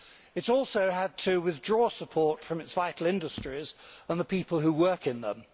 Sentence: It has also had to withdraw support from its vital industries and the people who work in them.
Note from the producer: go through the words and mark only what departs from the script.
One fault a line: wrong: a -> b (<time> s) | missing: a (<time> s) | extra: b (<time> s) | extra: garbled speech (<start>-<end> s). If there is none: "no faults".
no faults